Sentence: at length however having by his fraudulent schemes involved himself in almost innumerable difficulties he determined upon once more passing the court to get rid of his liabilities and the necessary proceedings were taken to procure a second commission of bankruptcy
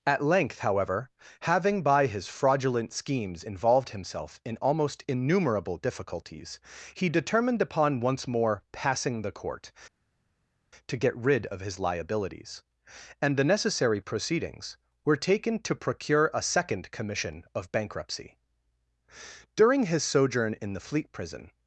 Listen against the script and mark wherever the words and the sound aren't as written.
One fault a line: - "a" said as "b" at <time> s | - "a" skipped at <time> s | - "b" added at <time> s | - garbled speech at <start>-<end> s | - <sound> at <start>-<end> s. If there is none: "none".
- "during his sojourn in the fleet prison" added at 19.5 s